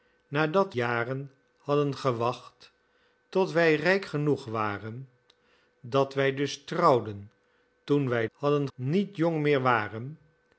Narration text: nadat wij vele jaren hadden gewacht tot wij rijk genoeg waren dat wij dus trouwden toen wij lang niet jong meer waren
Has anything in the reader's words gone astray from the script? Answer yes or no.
yes